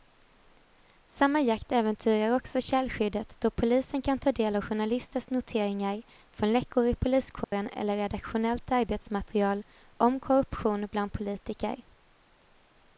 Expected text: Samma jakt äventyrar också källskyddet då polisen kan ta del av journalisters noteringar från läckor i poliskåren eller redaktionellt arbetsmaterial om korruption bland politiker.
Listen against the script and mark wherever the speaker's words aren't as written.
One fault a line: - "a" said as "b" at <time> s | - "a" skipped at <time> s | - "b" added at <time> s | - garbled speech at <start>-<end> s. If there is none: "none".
none